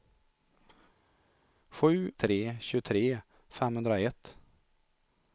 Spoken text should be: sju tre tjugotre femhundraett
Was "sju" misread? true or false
false